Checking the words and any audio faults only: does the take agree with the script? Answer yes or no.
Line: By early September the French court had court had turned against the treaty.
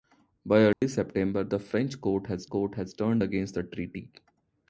no